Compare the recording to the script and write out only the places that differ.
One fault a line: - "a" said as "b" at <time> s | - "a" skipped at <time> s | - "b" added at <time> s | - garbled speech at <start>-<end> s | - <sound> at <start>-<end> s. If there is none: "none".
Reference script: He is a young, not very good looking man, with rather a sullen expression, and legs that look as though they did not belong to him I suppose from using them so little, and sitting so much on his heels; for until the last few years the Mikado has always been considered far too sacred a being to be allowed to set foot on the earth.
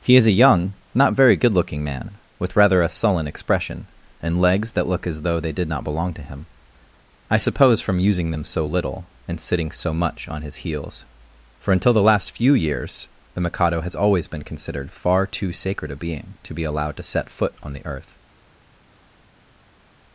none